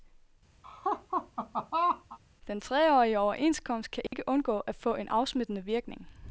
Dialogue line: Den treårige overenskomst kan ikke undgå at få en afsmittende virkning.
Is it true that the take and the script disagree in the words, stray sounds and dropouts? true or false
true